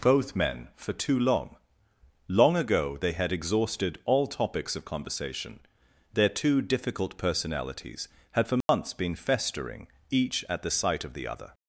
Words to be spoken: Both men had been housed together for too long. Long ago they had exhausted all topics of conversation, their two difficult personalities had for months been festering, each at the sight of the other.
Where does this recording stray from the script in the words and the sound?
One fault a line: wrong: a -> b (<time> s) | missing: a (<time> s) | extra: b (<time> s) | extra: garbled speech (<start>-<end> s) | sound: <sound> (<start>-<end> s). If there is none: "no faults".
missing: had been housed together (0.7 s)
sound: dropout (8.6-8.7 s)